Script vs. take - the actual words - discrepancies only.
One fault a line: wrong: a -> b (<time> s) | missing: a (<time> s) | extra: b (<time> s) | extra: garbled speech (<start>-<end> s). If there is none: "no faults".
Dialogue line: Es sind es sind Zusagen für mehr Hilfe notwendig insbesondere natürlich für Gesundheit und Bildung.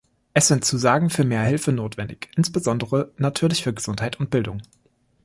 missing: es sind (0.7 s)